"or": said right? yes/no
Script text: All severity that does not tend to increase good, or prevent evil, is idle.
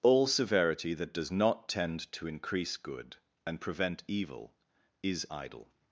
no